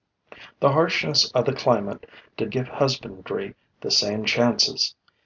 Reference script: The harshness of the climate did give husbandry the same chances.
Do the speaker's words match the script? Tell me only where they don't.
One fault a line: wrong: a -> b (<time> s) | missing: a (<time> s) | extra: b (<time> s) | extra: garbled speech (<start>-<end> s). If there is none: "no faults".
no faults